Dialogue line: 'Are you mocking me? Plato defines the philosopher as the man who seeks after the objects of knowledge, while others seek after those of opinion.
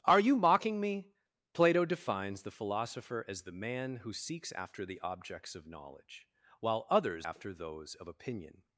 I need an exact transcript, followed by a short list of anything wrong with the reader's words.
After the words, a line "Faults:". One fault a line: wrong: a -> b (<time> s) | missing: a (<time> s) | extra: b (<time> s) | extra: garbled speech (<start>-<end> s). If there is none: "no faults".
'Are you mocking me? Plato defines the philosopher as the man who seeks after the objects of knowledge, while others after those of opinion.
Faults:
missing: seek (7.3 s)